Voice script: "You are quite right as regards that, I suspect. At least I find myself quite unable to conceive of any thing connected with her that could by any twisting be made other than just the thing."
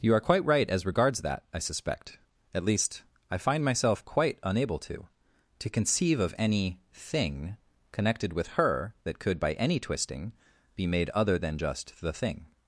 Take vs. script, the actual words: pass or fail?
fail